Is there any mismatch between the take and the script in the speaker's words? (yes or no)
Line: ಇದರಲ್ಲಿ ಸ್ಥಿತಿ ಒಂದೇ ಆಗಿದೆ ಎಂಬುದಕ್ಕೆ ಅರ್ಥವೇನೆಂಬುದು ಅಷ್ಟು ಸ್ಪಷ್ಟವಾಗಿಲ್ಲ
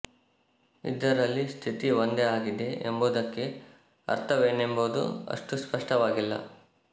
no